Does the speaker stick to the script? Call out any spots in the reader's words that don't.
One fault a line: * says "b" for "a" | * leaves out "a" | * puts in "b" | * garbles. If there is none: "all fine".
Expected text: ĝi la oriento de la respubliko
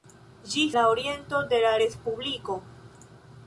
all fine